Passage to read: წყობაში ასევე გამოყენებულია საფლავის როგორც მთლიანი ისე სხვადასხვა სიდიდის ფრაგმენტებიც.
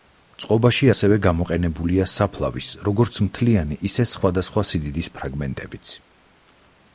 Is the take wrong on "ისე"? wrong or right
right